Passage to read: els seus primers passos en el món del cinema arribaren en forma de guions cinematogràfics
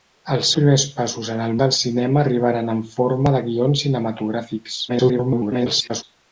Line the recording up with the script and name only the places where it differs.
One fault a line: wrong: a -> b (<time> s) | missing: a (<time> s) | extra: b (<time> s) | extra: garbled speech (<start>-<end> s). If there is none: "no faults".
missing: seus (0.5 s)
missing: món (1.5 s)
extra: garbled speech (4.9-6.0 s)